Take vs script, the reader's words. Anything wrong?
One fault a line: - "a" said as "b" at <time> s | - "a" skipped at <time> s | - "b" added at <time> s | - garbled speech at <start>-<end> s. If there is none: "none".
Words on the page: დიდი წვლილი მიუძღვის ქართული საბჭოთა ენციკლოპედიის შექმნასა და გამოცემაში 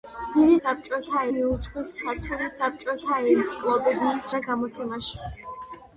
- "წვლილი" said as "საბჭოთა" at 0.6 s
- "შექმნასა" skipped at 4.3 s